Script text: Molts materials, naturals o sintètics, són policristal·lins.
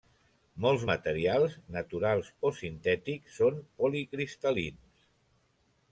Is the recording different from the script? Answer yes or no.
no